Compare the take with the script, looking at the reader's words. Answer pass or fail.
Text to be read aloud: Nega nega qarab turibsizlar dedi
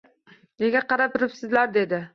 fail